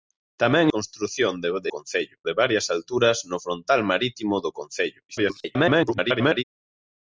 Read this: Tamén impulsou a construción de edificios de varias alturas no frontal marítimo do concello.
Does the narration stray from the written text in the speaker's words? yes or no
yes